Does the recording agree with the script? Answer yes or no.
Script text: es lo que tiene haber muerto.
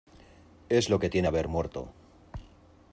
yes